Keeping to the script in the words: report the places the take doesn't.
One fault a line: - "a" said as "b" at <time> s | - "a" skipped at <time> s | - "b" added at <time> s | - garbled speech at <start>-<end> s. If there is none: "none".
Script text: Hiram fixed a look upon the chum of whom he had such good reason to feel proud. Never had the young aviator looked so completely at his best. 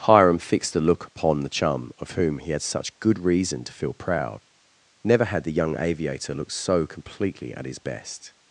none